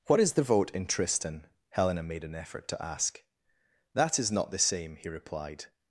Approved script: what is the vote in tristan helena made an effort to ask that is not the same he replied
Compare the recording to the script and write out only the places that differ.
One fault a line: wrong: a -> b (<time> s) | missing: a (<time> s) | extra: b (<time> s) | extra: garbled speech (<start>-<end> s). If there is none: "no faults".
no faults